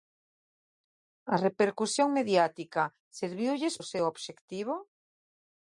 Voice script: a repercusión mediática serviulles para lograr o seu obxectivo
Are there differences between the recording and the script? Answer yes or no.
yes